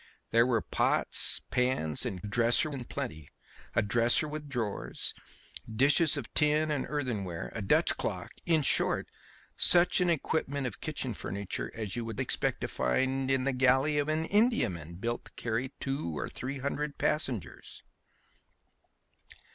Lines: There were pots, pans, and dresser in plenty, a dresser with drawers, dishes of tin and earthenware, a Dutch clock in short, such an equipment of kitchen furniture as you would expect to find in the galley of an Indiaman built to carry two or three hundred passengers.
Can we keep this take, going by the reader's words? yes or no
yes